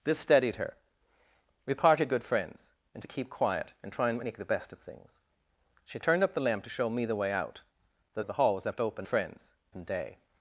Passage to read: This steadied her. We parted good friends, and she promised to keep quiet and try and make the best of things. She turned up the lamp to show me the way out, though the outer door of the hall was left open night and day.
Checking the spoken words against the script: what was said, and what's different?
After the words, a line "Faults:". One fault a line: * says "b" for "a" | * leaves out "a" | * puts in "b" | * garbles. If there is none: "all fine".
This steadied her. We parted good friends, and to keep quiet and try and make the best of things. She turned up the lamp to show me the way out, though of the hall was left open friends and day.
Faults:
* leaves out "she promised"
* leaves out "the outer door"
* says "friends" for "night"